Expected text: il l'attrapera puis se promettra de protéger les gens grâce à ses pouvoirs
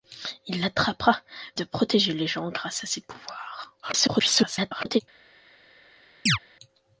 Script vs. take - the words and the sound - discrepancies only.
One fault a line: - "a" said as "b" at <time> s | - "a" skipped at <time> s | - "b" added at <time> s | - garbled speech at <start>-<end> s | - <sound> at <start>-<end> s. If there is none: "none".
- "puis se promettra" skipped at 1.2 s
- garbled speech at 3.8-5.0 s
- chirp at 6.3-6.4 s